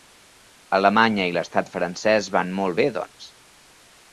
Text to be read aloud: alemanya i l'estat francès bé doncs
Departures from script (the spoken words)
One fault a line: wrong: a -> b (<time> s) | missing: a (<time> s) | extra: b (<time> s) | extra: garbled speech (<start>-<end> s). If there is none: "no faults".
extra: van molt (2.4 s)